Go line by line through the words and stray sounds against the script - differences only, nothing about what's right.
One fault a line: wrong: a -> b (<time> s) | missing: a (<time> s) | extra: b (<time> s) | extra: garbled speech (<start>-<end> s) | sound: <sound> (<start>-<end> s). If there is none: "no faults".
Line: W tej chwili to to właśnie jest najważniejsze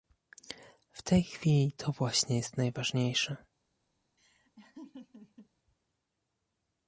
missing: to (1.9 s)
sound: laugh (4.2-5.5 s)